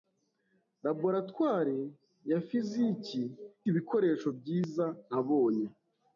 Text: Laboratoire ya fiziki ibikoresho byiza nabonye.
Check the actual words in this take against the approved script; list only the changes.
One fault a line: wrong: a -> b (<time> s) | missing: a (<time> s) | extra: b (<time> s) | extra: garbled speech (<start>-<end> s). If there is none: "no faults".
no faults